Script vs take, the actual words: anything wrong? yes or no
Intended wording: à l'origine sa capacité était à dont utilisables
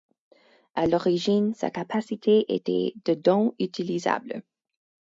yes